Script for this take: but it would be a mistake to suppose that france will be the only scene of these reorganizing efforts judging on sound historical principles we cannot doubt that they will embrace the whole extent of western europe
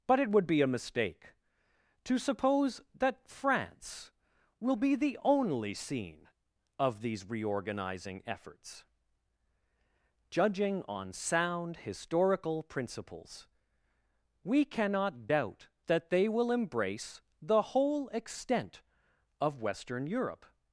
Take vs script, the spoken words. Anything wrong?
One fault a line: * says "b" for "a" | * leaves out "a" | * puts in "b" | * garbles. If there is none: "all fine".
all fine